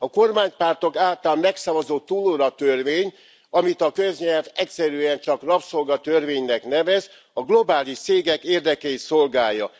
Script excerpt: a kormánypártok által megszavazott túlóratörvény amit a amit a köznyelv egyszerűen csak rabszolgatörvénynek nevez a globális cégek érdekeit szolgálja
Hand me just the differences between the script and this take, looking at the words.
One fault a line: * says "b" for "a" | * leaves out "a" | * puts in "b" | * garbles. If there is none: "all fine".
* leaves out "amit a"